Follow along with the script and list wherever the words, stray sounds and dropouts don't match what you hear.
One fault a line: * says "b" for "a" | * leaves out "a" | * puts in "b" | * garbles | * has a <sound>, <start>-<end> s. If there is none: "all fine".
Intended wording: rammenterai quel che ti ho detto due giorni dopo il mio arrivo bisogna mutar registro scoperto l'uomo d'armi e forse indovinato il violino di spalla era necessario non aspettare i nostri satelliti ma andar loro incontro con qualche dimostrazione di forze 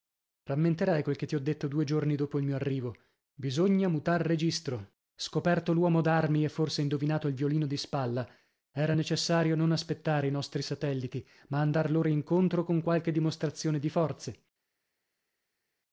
all fine